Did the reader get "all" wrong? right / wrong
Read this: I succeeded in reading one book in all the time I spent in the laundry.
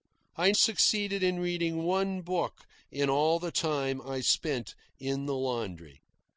right